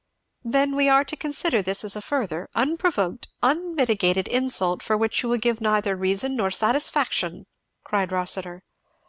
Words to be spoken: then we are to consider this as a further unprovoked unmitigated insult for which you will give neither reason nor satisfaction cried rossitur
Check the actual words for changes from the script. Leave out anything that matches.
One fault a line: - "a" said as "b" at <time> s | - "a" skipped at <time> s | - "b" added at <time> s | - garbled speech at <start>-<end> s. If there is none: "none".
none